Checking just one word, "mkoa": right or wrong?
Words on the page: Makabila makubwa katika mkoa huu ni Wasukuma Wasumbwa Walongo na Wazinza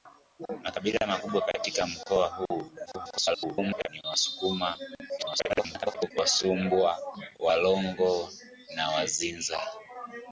right